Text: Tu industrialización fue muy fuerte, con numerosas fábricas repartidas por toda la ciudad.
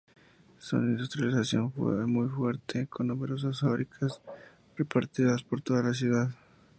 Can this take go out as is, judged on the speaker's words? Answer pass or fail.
fail